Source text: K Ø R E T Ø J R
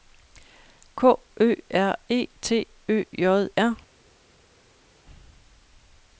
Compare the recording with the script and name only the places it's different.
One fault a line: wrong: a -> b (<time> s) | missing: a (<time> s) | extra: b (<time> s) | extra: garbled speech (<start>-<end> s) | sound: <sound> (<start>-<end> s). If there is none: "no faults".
no faults